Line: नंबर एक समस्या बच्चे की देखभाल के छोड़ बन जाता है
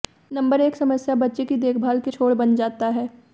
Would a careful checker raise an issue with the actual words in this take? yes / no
no